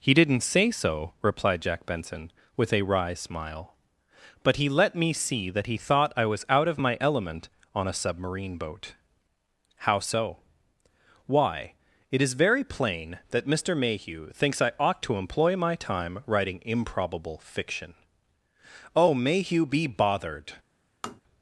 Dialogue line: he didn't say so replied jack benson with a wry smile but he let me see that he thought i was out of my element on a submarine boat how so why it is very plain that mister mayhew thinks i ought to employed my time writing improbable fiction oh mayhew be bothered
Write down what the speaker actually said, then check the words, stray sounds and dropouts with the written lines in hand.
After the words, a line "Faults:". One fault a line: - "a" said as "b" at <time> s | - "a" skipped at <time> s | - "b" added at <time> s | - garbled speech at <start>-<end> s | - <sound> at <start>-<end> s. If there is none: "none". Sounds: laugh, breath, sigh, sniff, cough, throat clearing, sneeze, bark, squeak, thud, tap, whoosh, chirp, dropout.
he didn't say so replied jack benson with a wry smile but he let me see that he thought i was out of my element on a submarine boat how so why it is very plain that mister mayhew thinks i ought to employ my time writing improbable fiction oh mayhew be bothered
Faults:
- "employed" said as "employ" at 15.2 s
- tap at 21.0-21.2 s